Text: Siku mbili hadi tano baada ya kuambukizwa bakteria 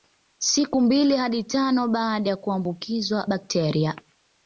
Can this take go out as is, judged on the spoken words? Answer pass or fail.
pass